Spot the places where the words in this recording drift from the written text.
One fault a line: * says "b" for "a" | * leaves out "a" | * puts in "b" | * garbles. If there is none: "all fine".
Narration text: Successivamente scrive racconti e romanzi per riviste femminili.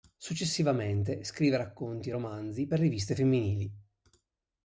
all fine